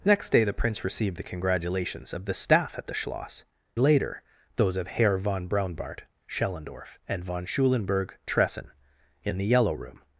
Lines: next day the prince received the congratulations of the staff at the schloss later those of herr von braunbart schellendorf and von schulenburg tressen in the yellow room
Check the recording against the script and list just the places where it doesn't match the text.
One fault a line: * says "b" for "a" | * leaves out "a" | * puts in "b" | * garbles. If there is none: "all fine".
all fine